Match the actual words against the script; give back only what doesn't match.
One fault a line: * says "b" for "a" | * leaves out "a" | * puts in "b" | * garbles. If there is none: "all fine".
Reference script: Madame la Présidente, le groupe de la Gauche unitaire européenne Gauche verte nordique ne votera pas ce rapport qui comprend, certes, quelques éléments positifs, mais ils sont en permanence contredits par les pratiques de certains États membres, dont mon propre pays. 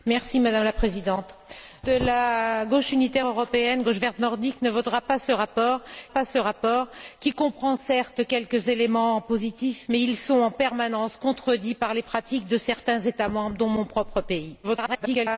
* leaves out "le groupe"
* puts in "pas ce rapport"
* garbles